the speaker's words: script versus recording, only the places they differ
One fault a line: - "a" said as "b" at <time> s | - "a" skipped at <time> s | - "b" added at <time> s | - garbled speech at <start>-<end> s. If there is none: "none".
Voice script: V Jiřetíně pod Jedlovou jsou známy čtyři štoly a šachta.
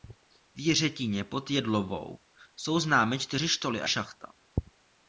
none